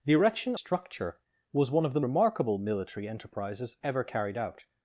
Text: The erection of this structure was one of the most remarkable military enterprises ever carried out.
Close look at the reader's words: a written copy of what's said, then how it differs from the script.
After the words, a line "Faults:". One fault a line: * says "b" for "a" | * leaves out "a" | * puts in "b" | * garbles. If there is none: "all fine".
The erection structure was one of the remarkable military enterprises ever carried out.
Faults:
* leaves out "of this"
* leaves out "most"